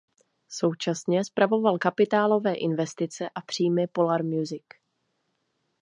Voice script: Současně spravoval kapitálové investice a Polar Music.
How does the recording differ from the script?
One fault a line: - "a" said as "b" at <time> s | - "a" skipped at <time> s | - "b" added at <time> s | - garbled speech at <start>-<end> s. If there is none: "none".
- "příjmy" added at 3.4 s